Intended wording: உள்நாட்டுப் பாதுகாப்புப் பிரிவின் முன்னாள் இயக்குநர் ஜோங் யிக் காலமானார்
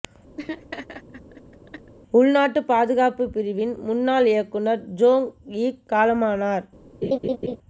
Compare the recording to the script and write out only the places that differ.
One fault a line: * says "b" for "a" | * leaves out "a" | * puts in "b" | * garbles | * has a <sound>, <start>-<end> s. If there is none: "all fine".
* has a laugh, 0.4-1.9 s
* has a laugh, 7.0-7.6 s